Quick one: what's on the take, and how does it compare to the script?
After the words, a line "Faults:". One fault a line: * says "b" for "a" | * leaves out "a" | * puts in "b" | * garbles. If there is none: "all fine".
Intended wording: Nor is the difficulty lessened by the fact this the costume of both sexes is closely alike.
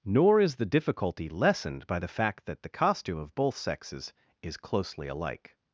Nor is the difficulty lessened by the fact that the costume of both sexes is closely alike.
Faults:
* says "that" for "this"